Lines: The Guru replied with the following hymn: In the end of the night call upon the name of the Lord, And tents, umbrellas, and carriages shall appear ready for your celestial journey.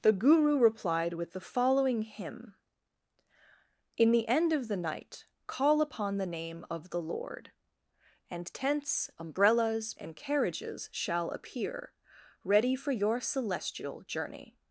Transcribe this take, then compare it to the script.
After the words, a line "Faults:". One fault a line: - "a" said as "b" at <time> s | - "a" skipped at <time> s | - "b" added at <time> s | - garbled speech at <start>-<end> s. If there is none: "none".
The Guru replied with the following hymn: In the end of the night call upon the name of the Lord, And tents, umbrellas, and carriages shall appear ready for your celestial journey.
Faults:
none